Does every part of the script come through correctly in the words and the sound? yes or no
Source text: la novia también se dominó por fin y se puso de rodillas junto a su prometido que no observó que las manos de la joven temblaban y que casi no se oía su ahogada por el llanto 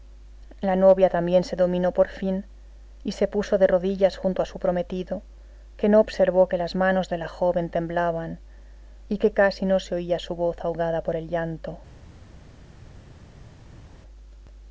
no